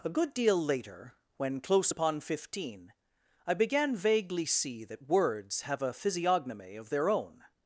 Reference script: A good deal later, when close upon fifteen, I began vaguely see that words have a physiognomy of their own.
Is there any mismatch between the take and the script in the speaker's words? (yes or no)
no